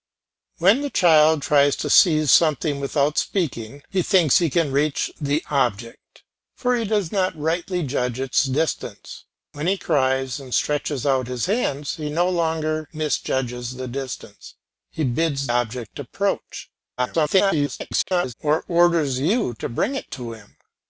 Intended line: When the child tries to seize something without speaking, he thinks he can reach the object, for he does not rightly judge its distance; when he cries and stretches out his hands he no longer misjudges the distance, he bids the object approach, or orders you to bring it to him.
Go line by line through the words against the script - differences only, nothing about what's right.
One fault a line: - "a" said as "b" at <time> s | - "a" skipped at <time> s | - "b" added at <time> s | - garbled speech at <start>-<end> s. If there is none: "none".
- "the" skipped at 15.5 s
- garbled speech at 17.0-18.3 s